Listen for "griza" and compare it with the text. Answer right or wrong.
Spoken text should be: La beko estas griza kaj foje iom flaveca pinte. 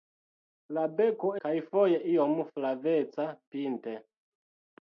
wrong